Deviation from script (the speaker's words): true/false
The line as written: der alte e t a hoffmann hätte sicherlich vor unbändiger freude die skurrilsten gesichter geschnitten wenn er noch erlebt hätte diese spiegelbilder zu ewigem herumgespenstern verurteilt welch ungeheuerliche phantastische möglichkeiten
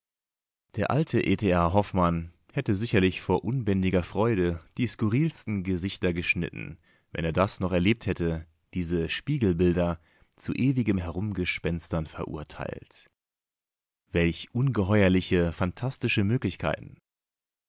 true